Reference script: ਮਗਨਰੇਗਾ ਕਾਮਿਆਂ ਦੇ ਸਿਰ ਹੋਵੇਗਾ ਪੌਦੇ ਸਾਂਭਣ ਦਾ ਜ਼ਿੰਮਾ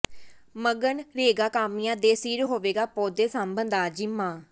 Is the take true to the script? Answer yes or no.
yes